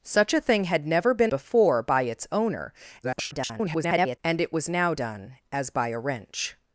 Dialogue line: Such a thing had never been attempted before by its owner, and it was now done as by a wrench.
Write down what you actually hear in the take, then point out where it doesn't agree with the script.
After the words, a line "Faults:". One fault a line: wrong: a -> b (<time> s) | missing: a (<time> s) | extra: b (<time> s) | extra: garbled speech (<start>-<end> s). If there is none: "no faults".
Such a thing had never been before by its owner, [garbled] and it was now done as by a wrench.
Faults:
missing: attempted (1.3 s)
extra: garbled speech (3.0-4.2 s)